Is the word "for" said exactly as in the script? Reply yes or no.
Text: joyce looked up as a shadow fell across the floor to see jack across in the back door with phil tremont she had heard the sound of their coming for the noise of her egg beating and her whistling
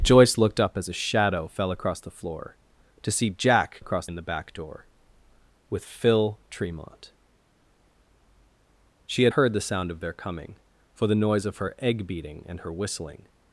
yes